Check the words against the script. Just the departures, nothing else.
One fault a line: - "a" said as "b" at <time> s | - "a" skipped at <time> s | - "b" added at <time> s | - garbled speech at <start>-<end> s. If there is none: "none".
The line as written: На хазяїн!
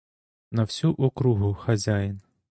- "всю округу" added at 0.6 s